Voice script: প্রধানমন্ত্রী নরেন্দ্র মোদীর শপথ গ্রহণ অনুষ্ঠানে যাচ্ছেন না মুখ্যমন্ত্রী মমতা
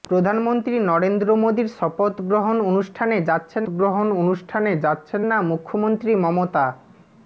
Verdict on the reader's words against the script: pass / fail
fail